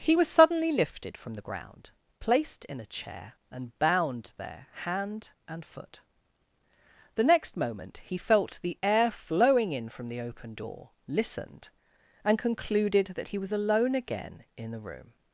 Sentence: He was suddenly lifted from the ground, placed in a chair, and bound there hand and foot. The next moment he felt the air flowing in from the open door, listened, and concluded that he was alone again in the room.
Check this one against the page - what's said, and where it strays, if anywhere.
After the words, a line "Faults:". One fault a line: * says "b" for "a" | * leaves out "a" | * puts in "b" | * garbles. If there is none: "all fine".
He was suddenly lifted from the ground, placed in a chair, and bound there hand and foot. The next moment he felt the air flowing in from the open door, listened, and concluded that he was alone again in the room.
Faults:
all fine